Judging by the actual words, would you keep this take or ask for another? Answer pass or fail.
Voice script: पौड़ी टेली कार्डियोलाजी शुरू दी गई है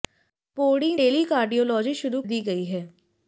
pass